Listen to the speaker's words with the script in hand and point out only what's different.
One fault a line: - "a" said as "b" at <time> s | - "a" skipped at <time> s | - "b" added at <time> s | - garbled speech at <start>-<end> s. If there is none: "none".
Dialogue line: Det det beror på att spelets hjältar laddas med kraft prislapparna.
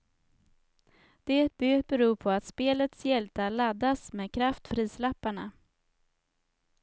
none